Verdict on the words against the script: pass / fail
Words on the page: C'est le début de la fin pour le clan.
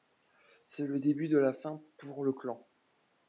pass